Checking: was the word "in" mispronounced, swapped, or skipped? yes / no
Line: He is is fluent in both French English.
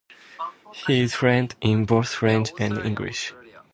no